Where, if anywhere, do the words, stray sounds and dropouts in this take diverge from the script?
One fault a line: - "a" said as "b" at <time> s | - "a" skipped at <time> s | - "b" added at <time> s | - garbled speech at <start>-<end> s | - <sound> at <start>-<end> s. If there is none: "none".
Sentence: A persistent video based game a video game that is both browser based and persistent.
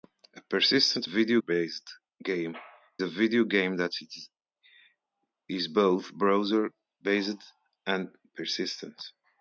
none